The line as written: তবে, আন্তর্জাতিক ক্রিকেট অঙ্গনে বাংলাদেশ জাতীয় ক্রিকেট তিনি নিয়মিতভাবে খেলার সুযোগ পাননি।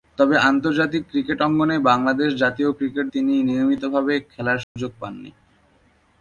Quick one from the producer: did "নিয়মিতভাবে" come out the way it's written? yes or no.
yes